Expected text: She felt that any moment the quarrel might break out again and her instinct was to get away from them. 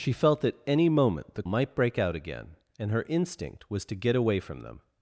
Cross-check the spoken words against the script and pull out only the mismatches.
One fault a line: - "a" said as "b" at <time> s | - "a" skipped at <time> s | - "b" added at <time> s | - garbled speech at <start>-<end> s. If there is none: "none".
- "quarrel" skipped at 1.4 s